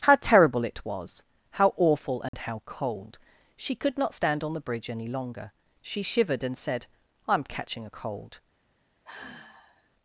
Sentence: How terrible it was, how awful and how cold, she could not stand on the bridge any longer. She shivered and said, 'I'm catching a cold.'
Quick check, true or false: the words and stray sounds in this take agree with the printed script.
false